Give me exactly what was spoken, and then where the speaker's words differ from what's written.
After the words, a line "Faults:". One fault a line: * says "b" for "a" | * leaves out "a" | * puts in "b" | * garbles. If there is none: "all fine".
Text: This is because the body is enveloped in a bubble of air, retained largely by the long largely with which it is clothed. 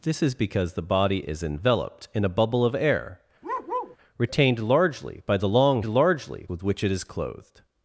This is because the body is enveloped in a bubble of air, retained largely by the long largely with which it is clothed.
Faults:
all fine